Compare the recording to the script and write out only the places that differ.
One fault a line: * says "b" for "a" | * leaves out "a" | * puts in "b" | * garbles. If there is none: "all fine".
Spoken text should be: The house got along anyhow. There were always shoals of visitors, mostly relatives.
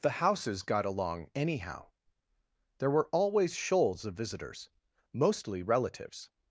* says "houses" for "house"